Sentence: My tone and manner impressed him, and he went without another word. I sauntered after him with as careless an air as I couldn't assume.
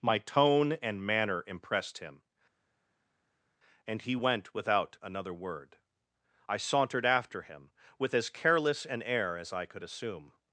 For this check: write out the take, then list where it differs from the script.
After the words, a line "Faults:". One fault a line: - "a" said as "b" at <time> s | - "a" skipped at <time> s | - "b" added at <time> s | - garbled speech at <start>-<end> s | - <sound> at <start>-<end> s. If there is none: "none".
My tone and manner impressed him, and he went without another word. I sauntered after him with as careless an air as I could assume.
Faults:
- "couldn't" said as "could" at 9.6 s